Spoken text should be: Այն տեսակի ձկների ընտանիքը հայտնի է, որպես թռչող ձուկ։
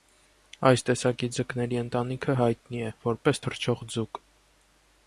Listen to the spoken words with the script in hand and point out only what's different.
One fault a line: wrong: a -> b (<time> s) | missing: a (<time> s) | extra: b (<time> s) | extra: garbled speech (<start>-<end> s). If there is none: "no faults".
wrong: Այն -> Այս (0.7 s)